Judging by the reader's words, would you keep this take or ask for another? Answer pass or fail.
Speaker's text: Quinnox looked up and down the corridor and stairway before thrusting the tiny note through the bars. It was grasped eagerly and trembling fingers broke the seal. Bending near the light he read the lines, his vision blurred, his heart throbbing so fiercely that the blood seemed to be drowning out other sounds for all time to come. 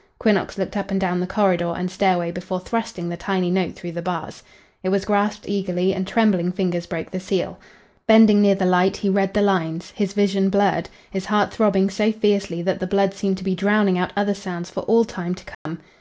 pass